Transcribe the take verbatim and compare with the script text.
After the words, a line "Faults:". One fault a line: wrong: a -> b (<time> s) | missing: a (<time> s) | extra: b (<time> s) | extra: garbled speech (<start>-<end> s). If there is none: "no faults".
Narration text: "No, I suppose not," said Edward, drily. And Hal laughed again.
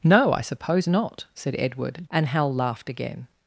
"No, I suppose not," said Edward. And Hal laughed again.
Faults:
missing: drily (2.0 s)